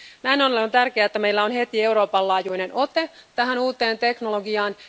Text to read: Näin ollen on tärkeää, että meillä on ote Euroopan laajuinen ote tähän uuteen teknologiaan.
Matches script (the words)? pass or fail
fail